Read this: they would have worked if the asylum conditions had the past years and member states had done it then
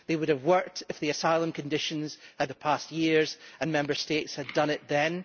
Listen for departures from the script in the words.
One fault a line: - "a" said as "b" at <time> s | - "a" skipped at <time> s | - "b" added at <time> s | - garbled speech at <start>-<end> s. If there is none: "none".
none